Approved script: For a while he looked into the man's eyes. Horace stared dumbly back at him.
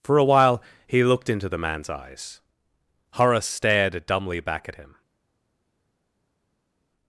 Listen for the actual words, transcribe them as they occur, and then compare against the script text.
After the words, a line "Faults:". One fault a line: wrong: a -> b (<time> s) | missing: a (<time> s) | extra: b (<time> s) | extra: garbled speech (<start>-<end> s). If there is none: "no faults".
For a while he looked into the man's eyes. Horace stared dumbly back at him.
Faults:
no faults